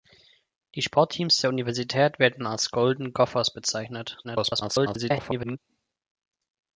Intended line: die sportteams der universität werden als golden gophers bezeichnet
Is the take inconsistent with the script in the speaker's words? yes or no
yes